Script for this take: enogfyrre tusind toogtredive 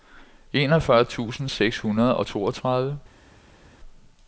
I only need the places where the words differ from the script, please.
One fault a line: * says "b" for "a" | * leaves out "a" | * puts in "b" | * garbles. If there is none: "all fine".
* puts in "seks hundrede og"